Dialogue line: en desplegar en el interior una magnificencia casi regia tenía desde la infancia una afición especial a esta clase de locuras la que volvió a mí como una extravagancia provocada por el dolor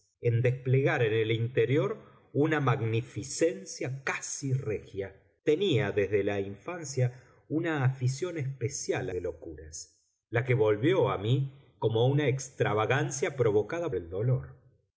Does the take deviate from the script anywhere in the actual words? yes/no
yes